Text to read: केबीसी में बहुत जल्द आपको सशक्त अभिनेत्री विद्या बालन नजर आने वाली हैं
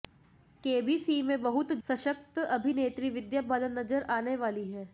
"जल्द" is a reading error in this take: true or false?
true